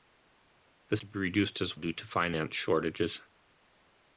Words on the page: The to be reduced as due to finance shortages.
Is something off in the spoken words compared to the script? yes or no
no